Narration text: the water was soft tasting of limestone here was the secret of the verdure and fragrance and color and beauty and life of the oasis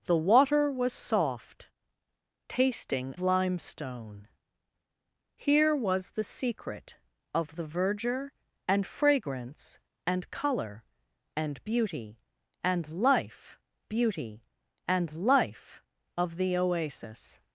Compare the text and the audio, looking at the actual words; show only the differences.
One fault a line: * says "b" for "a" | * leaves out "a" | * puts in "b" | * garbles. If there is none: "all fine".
* leaves out "of"
* puts in "beauty and life"